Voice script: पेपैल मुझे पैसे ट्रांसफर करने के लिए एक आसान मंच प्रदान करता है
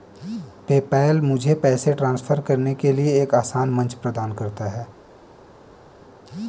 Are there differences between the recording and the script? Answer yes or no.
no